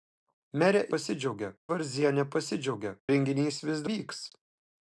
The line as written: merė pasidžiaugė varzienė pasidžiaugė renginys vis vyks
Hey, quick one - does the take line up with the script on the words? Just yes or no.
yes